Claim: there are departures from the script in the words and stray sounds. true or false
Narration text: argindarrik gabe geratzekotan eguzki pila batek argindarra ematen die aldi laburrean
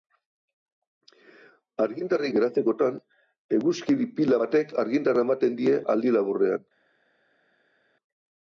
true